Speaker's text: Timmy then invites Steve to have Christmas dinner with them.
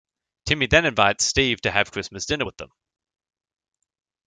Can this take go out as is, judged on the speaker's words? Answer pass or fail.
pass